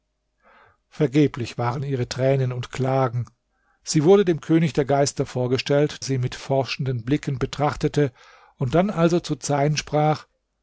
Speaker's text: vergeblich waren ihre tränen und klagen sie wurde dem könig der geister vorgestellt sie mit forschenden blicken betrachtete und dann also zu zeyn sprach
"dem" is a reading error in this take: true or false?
false